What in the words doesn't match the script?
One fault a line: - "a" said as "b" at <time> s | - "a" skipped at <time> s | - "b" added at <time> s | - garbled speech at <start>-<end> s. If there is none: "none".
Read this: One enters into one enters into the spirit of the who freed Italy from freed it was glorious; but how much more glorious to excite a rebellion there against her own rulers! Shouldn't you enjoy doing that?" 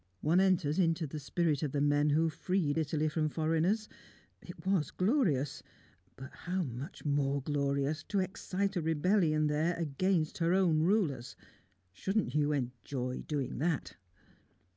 - "one enters into" skipped at 1.1 s
- "men" added at 1.8 s
- "freed" said as "foreigners" at 3.3 s